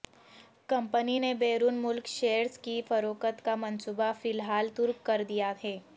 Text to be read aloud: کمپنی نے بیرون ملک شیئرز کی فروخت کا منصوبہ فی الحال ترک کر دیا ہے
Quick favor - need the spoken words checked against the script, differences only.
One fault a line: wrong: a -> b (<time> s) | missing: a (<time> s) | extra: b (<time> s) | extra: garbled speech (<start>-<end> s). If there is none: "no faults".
no faults